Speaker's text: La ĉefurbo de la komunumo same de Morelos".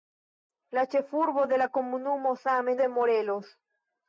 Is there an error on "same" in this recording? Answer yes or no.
no